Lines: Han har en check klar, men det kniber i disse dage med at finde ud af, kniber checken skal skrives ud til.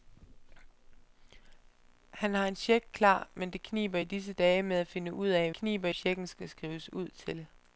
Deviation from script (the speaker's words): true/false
false